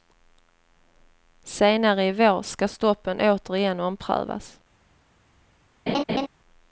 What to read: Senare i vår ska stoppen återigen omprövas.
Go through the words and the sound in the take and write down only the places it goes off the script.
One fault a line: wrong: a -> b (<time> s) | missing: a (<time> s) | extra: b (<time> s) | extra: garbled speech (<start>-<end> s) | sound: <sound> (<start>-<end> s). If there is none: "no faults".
sound: laugh (5.9-6.3 s)